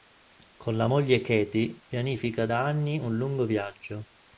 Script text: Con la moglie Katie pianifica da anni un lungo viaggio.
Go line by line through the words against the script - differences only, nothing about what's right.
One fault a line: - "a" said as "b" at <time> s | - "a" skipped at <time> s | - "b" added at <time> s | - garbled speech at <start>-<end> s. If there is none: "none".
none